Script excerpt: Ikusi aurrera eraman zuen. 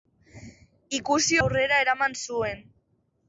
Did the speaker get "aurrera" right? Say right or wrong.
right